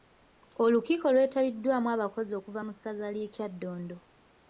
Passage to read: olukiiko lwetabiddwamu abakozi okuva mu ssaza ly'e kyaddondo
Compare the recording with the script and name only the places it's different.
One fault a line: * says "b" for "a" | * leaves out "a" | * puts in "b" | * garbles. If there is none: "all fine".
all fine